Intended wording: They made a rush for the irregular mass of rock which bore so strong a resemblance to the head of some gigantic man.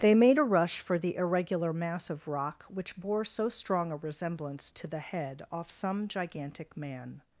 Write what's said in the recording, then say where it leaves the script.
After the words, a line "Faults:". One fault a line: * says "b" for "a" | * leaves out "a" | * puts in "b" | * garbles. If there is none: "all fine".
They made a rush for the irregular mass of rock which bore so strong a resemblance to the head off some gigantic man.
Faults:
* says "off" for "of"